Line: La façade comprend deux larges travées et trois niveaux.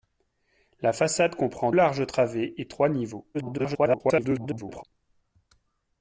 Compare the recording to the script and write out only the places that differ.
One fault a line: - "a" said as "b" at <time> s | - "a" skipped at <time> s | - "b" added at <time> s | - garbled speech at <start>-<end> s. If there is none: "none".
- "deux" skipped at 1.7 s
- garbled speech at 3.3-4.8 s